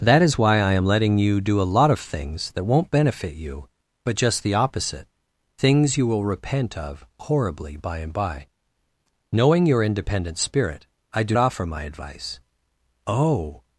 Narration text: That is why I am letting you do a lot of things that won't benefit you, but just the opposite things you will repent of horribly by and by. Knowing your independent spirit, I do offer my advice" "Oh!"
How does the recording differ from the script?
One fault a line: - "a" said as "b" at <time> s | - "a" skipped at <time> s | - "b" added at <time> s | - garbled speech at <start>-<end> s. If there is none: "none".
none